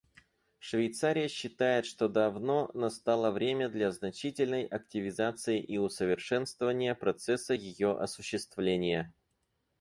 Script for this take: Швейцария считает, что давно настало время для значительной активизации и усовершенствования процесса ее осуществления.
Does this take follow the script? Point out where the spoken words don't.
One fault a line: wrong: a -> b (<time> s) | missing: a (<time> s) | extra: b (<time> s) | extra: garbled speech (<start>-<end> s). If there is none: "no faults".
no faults